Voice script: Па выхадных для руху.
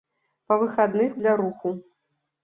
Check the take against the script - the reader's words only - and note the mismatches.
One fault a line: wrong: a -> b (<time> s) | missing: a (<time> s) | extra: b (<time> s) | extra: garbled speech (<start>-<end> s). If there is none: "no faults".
no faults